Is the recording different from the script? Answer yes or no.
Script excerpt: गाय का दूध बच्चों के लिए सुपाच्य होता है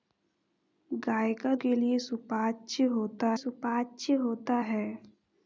yes